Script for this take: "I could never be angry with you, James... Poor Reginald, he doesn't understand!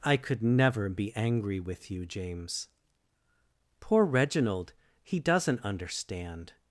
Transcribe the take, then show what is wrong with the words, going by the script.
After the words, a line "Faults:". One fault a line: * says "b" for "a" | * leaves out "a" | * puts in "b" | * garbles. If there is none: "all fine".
"I could never be angry with you, James... Poor Reginald, he doesn't understand!
Faults:
all fine